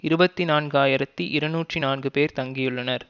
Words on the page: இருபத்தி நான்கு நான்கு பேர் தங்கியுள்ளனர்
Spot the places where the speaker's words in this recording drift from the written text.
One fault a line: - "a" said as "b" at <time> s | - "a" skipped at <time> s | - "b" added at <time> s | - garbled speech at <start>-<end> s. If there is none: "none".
- "ஆயிரத்தி இருநூற்றி" added at 0.8 s